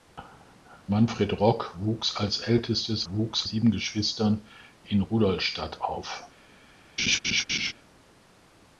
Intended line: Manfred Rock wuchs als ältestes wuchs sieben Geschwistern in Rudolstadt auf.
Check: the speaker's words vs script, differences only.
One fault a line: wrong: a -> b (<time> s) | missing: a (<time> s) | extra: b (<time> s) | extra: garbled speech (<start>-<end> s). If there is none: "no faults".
no faults